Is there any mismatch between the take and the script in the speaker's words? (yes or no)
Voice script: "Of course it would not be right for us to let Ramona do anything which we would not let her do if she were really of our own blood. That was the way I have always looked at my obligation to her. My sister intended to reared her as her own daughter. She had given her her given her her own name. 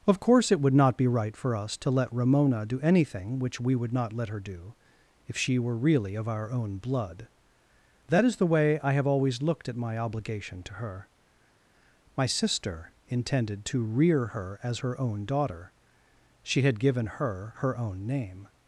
yes